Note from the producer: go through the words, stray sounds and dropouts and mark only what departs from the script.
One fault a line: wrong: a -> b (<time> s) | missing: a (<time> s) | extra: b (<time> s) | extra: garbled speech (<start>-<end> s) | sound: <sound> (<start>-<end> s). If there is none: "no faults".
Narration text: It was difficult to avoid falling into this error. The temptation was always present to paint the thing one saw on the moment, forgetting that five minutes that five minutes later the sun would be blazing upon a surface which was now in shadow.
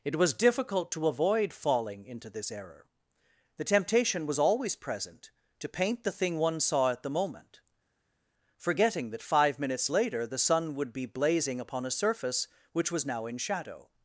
wrong: on -> at (6.9 s)
missing: that five minutes (9.9 s)